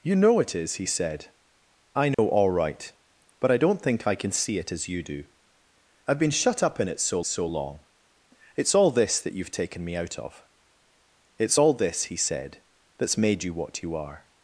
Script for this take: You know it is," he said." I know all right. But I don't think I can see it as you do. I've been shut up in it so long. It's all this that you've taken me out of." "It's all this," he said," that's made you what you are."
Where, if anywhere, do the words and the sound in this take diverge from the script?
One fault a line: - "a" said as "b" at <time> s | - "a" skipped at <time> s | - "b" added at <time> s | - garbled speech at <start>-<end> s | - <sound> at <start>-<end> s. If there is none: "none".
- dropout at 2.1-2.2 s
- "so" added at 7.2 s